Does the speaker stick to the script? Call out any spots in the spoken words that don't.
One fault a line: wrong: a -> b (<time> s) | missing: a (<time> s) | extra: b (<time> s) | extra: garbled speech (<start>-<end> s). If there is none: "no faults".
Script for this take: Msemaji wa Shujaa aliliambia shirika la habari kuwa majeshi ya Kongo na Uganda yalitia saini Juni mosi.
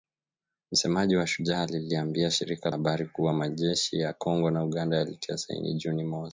missing: la (2.7 s)